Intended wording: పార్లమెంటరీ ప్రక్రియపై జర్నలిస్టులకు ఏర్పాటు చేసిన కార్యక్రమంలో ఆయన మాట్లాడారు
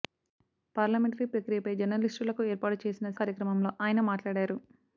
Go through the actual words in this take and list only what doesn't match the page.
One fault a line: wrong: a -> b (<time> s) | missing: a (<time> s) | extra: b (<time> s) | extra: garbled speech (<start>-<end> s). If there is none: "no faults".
no faults